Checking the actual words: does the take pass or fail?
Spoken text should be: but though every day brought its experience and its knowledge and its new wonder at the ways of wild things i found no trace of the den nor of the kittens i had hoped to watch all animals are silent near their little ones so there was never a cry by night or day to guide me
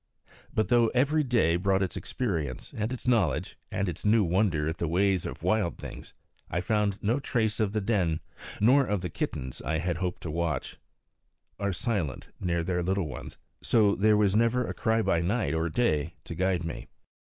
fail